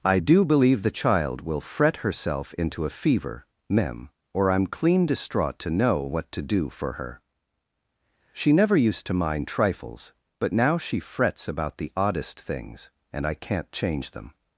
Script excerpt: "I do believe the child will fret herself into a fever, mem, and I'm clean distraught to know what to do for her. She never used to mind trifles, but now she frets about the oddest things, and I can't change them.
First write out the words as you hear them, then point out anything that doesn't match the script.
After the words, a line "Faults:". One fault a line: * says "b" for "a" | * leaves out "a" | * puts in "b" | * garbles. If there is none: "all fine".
"I do believe the child will fret herself into a fever, mem, or I'm clean distraught to know what to do for her. She never used to mind trifles, but now she frets about the oddest things, and I can't change them.
Faults:
* says "or" for "and"